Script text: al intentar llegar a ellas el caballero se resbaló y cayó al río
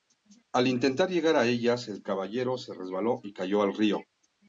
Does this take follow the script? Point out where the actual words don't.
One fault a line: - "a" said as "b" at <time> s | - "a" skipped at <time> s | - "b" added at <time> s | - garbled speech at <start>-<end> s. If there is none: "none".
none